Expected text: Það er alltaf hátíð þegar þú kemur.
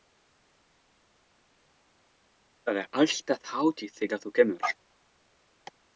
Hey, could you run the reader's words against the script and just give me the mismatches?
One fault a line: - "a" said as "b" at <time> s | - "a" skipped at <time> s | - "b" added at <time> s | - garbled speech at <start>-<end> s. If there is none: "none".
none